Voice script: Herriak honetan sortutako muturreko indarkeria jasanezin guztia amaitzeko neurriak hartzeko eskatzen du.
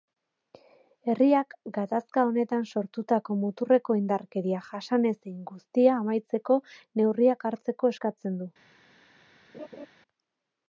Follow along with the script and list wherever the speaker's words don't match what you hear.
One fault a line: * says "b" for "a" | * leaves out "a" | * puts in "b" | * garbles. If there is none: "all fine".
* puts in "gatazka"